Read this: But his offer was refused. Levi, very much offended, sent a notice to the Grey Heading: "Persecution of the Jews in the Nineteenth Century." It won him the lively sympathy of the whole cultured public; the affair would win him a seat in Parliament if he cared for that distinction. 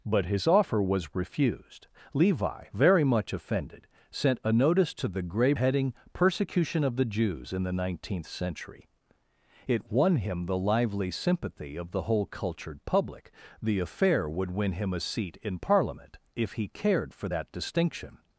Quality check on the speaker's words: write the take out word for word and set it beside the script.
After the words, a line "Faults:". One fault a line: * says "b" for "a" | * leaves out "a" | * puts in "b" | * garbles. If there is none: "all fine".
But his offer was refused. Levi, very much offended, sent a notice to the Grey Heading: "Persecution of the Jews in the Nineteenth Century." It won him the lively sympathy of the whole cultured public; the affair would win him a seat in Parliament if he cared for that distinction.
Faults:
all fine